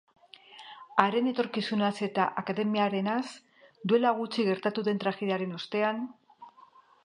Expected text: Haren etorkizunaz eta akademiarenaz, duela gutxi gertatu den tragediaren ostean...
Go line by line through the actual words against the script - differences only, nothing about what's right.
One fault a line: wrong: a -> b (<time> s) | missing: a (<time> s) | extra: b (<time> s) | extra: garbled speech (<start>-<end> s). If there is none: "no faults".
no faults